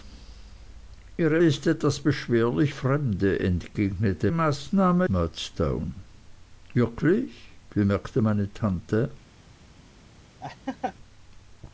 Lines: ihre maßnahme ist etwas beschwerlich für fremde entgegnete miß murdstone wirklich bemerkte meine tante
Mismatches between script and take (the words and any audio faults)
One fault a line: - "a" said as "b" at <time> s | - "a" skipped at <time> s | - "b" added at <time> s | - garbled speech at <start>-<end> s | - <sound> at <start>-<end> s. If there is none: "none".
- "maßnahme" skipped at 1.4 s
- "für" skipped at 2.7 s
- "miß" said as "maßnahme" at 4.3 s
- laugh at 10.4-10.9 s